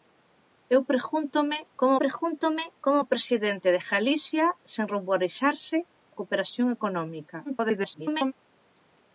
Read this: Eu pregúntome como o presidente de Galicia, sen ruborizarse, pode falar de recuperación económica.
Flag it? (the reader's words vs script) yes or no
yes